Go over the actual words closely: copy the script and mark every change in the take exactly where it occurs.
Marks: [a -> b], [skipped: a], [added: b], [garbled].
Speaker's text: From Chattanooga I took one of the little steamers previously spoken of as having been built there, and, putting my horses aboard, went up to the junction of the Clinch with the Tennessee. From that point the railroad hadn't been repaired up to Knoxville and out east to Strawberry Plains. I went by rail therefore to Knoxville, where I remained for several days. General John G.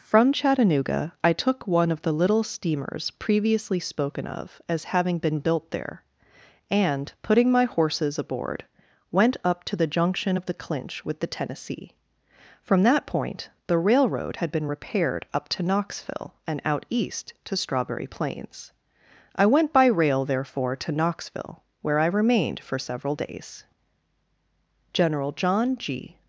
From Chattanooga I took one of the little steamers previously spoken of as having been built there, and, putting my horses aboard, went up to the junction of the Clinch with the Tennessee. From that point the railroad [hadn't -> had] been repaired up to Knoxville and out east to Strawberry Plains. I went by rail therefore to Knoxville, where I remained for several days. General John G.